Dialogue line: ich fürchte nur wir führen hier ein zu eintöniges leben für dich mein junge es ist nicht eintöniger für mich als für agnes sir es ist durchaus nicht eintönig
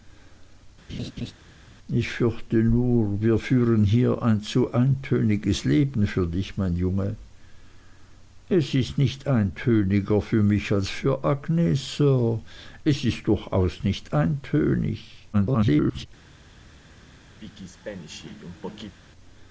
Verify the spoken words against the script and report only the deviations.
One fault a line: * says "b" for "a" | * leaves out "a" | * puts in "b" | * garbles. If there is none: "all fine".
* garbles